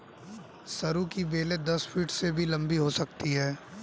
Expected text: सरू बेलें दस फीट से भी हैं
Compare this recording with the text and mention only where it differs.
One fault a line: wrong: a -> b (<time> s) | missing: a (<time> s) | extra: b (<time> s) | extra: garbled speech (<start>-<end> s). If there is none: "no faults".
extra: की (1.1 s)
extra: लंबी हो सकती (2.5 s)